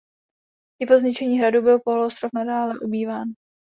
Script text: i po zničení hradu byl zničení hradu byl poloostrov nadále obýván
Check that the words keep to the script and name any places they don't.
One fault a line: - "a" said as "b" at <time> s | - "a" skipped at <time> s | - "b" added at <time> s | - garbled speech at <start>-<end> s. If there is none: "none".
- "zničení hradu byl" skipped at 1.8 s